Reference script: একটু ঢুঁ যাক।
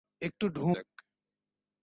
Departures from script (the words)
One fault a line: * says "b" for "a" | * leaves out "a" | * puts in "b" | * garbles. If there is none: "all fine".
all fine